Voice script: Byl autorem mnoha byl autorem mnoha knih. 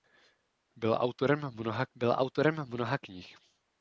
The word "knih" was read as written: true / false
true